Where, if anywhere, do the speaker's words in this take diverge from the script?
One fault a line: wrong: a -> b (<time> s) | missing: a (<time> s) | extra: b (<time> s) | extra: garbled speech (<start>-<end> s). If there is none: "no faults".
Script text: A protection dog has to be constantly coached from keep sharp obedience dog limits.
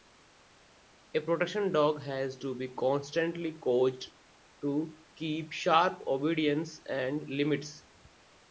wrong: from -> to (4.6 s)
wrong: dog -> and (6.9 s)